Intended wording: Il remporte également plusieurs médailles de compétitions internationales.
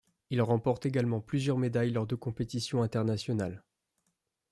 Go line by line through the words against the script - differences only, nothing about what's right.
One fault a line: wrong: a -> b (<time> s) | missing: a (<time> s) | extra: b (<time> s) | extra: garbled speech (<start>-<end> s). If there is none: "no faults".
extra: lors (1.9 s)